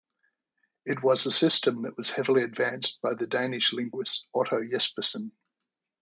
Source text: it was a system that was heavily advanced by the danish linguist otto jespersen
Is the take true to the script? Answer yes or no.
yes